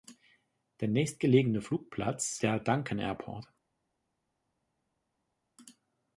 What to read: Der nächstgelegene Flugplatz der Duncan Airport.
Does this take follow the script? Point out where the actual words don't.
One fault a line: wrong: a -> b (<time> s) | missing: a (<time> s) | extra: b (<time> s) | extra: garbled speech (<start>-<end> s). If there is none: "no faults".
no faults